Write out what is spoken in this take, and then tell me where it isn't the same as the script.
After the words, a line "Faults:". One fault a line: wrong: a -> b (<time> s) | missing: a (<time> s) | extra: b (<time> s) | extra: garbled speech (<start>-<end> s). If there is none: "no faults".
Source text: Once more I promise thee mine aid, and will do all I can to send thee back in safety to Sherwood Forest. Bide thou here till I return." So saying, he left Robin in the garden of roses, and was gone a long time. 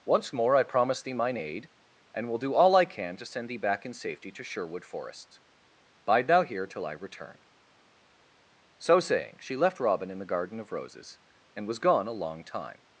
Once more I promise thee mine aid, and will do all I can to send thee back in safety to Sherwood Forest. Bide thou here till I return." So saying, she left Robin in the garden of roses, and was gone a long time.
Faults:
wrong: he -> she (9.4 s)